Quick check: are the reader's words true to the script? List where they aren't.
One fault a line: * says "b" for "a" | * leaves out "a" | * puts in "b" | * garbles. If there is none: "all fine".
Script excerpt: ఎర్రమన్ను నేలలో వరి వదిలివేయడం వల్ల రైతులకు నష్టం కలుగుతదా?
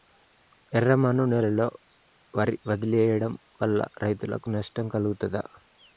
all fine